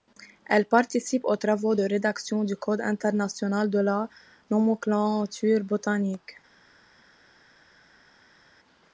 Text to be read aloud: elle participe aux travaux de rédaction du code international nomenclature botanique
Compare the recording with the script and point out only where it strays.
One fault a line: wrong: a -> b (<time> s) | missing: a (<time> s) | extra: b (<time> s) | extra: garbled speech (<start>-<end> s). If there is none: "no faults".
extra: de la (3.7 s)